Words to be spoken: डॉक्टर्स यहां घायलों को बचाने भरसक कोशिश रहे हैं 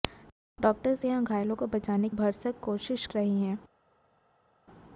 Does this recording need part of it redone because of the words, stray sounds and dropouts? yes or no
no